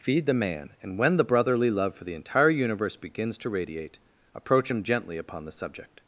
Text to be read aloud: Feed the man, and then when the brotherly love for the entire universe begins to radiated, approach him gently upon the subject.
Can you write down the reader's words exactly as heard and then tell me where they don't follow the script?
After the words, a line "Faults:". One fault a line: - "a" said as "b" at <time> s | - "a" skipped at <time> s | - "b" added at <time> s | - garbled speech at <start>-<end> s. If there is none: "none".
Feed the man, and when the brotherly love for the entire universe begins to radiate, approach him gently upon the subject.
Faults:
- "then" skipped at 1.0 s
- "radiated" said as "radiate" at 3.5 s